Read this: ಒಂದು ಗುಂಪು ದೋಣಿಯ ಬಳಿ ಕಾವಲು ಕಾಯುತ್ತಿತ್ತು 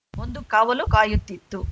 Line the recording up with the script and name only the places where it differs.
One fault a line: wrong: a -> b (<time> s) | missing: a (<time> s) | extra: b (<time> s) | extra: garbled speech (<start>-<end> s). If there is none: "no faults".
missing: ಗುಂಪು ದೋಣಿಯ ಬಳಿ (0.4 s)